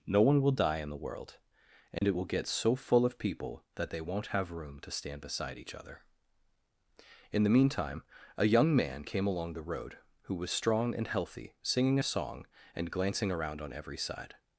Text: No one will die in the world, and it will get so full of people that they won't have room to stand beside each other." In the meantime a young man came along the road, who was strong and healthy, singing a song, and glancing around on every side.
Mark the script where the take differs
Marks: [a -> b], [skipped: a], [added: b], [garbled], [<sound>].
No one will die in the world, and [dropout] it will get so full of people that they won't have room to stand beside each other." In the meantime a young man came along the road, who was strong and healthy, singing a song, and glancing around on every side.